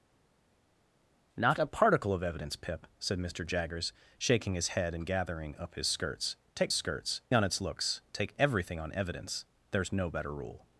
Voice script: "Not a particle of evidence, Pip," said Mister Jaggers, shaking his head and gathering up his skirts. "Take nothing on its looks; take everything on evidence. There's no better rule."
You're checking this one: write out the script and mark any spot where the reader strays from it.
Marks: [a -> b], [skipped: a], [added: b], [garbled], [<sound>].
"Not a particle of evidence, Pip," said Mister Jaggers, shaking his head and gathering up his skirts. "Take [nothing -> skirts] on its looks; take everything on evidence. There's no better rule."